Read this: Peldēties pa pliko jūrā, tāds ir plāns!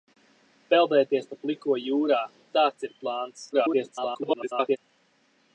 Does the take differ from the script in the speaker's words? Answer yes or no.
yes